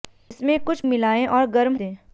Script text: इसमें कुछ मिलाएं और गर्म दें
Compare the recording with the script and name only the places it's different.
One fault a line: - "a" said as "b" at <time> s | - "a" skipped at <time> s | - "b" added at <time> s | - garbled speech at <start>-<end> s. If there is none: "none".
none